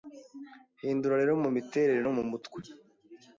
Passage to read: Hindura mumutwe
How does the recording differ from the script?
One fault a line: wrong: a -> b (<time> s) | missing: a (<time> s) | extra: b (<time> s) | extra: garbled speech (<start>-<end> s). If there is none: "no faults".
extra: rero mumiterere no (1.2 s)